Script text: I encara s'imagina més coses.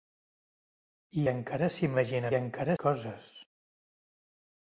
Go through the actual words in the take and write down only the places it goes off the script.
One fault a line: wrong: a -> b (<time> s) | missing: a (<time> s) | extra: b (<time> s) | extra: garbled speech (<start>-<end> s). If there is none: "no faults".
wrong: més -> encara (2.4 s)